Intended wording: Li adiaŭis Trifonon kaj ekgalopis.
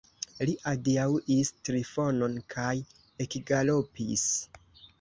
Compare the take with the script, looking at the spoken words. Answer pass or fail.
pass